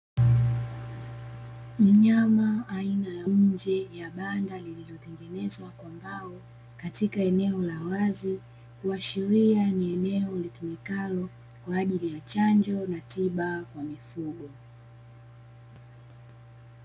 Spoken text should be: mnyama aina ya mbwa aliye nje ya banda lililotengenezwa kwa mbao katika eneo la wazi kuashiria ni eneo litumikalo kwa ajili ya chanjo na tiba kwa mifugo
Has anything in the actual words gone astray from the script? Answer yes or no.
yes